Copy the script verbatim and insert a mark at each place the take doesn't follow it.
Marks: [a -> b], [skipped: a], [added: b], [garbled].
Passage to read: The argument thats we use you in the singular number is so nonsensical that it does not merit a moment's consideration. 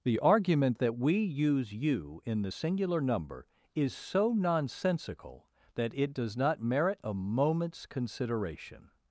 The argument [thats -> that] we use you in the singular number is so nonsensical that it does not merit a moment's consideration.